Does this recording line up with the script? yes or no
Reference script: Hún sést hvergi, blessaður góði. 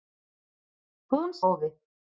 no